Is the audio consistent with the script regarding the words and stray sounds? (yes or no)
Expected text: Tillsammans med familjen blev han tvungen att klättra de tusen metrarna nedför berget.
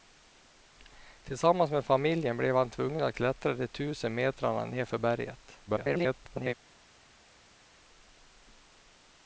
no